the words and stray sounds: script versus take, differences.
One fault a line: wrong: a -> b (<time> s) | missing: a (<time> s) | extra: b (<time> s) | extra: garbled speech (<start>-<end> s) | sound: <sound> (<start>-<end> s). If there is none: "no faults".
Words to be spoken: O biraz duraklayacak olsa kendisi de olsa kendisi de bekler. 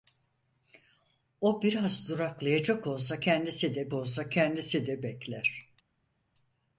no faults